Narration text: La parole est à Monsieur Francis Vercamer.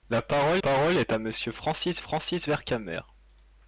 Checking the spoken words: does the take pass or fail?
fail